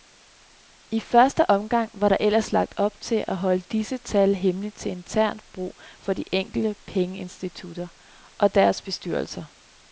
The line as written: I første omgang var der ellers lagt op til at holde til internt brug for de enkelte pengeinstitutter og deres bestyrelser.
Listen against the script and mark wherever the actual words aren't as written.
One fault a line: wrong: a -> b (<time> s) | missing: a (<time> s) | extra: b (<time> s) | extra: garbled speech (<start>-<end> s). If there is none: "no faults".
extra: disse tal hemmelige (3.6 s)